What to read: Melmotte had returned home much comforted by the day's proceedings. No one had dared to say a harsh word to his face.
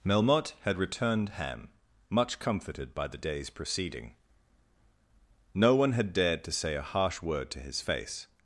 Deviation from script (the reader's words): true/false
true